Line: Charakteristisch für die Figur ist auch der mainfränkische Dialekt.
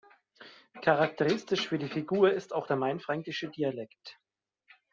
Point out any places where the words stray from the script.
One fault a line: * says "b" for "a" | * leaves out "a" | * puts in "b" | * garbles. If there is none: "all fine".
all fine